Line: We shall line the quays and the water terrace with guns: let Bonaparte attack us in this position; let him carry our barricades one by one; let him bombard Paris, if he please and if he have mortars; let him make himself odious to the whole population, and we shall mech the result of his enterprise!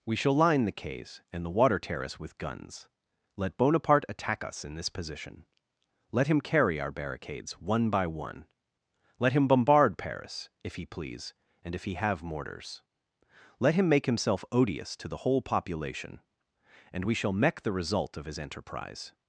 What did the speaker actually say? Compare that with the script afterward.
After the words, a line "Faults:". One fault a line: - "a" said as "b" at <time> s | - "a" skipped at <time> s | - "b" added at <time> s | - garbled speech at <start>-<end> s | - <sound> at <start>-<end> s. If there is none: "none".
We shall line the quays and the water terrace with guns: let Bonaparte attack us in this position; let him carry our barricades one by one; let him bombard Paris, if he please and if he have mortars; let him make himself odious to the whole population, and we shall mech the result of his enterprise!
Faults:
none